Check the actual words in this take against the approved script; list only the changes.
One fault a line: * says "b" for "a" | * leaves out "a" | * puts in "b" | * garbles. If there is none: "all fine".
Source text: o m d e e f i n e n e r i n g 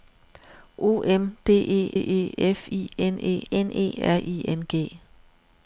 all fine